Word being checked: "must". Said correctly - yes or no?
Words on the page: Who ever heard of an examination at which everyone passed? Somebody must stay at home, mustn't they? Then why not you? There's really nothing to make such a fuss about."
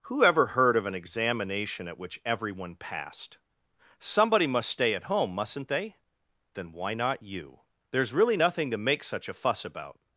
yes